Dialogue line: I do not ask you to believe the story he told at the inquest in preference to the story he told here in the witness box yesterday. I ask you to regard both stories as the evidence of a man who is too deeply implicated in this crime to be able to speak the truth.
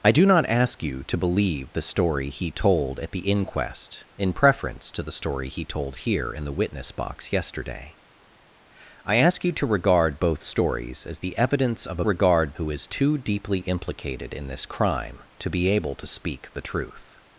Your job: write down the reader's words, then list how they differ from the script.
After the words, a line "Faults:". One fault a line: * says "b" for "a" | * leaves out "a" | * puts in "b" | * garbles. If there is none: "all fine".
I do not ask you to believe the story he told at the inquest in preference to the story he told here in the witness box yesterday. I ask you to regard both stories as the evidence of a regard who is too deeply implicated in this crime to be able to speak the truth.
Faults:
* says "regard" for "man"